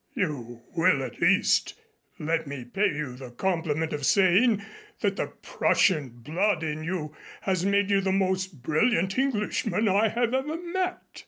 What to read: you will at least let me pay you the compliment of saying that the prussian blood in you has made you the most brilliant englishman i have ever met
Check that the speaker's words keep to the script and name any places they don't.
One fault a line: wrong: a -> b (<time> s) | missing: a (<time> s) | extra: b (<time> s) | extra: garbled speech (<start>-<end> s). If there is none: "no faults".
no faults